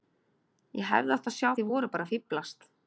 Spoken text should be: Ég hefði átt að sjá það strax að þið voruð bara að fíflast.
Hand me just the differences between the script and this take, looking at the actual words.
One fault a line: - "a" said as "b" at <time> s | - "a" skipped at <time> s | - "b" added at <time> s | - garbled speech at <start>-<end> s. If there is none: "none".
- "það strax að" skipped at 1.5 s